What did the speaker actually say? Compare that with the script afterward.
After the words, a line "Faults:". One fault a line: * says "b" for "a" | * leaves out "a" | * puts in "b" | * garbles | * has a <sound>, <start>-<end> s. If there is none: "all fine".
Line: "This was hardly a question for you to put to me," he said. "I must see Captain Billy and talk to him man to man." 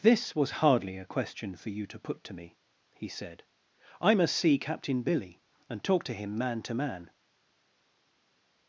"This was hardly a question for you to put to me," he said. "I must see Captain Billy and talk to him man to man."
Faults:
all fine